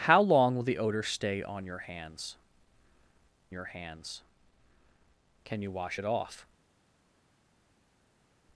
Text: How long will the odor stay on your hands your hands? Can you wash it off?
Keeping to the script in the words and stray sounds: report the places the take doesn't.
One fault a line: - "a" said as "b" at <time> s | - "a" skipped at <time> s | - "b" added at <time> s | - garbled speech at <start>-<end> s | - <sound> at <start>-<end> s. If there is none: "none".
none